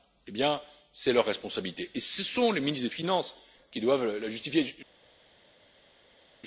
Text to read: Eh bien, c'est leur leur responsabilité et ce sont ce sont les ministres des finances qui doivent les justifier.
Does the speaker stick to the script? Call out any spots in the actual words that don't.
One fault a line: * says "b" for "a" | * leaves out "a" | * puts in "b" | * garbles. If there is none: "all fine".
* leaves out "leur"
* leaves out "ce sont"
* says "la" for "les"